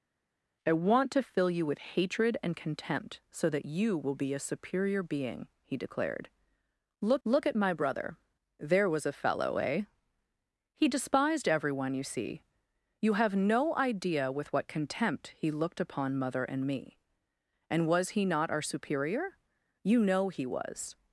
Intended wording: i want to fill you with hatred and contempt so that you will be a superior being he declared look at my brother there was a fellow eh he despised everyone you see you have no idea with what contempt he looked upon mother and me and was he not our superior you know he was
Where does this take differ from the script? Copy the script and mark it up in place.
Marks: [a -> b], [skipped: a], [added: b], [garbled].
i want to fill you with hatred and contempt so that you will be a superior being he declared look [added: look] at my brother there was a fellow eh he despised everyone you see you have no idea with what contempt he looked upon mother and me and was he not our superior you know he was